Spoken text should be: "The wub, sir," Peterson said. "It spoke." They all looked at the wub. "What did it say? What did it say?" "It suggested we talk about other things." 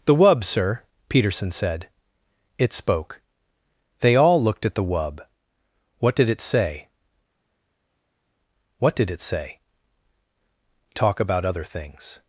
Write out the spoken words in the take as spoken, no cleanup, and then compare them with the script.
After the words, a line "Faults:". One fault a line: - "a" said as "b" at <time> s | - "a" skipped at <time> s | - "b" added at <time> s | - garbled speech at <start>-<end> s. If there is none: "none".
"The wub, sir," Peterson said. "It spoke." They all looked at the wub. "What did it say? What did it say?" "Talk about other things."
Faults:
- "It suggested we" skipped at 9.6 s